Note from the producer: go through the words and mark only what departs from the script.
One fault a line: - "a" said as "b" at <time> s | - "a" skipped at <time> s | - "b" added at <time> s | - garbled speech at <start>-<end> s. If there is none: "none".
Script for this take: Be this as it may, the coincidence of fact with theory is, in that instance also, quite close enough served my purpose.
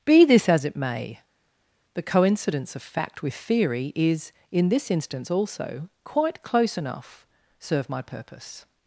- "that" said as "this" at 4.7 s
- "served" said as "serve" at 7.6 s